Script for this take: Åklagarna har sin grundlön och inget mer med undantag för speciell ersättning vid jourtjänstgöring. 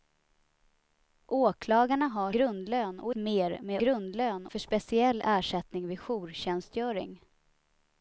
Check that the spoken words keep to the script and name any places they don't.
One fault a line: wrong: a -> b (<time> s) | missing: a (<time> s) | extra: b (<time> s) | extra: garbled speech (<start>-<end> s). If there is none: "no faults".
missing: sin (2.3 s)
missing: inget (3.1 s)
wrong: undantag -> grundlön (3.8 s)